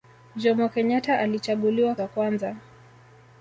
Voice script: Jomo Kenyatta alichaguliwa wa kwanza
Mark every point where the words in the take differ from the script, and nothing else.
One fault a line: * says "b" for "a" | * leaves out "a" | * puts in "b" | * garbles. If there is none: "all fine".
all fine